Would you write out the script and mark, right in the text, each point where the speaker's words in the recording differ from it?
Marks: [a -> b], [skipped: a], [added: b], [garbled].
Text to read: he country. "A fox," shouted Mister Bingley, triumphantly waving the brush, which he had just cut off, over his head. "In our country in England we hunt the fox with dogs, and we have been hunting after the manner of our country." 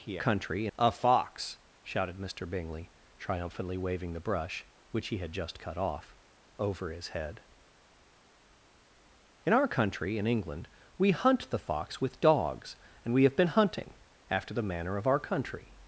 he country. "A fox," shouted Mister Bingley, triumphantly waving the brush, which he had just cut off, over his head. "In our country in England we hunt the fox with dogs, and we have been hunting after the manner of our country."